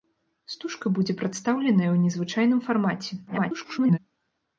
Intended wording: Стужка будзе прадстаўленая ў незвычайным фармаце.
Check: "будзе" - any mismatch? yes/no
no